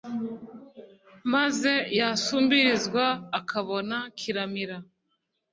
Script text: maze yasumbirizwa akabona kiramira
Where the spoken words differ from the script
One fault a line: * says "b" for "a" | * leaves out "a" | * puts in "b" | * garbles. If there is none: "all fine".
all fine